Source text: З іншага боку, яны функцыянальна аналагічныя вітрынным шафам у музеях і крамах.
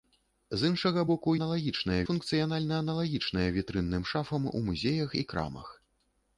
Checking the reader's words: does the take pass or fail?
fail